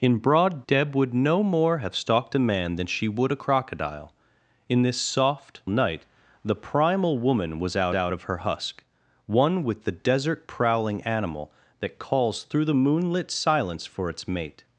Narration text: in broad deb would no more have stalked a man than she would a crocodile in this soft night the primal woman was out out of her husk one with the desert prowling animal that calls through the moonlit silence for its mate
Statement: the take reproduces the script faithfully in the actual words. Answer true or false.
true